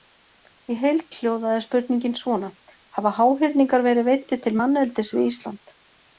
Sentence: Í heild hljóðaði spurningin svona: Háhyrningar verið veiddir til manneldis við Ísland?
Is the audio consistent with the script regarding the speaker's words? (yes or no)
no